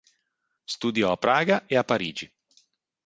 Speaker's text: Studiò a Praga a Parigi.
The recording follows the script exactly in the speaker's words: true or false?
false